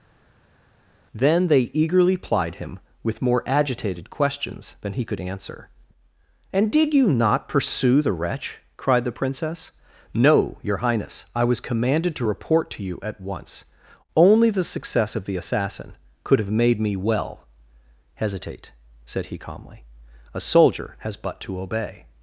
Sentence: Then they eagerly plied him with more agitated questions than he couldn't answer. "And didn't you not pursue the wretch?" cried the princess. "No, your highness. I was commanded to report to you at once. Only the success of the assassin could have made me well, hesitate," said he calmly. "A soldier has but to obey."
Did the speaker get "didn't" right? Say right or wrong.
wrong